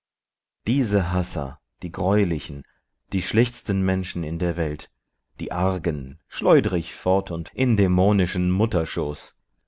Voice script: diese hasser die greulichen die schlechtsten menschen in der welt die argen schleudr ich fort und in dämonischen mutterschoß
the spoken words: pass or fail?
pass